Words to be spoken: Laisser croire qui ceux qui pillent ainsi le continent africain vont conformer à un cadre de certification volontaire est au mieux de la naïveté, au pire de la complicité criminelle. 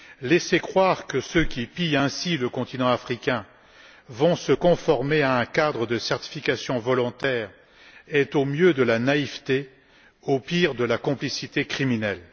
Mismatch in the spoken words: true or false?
true